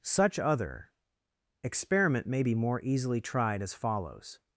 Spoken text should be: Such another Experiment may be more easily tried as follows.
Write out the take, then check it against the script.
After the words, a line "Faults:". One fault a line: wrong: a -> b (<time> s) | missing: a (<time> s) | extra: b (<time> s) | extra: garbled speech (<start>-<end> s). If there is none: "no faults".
Such other Experiment may be more easily tried as follows.
Faults:
wrong: another -> other (0.4 s)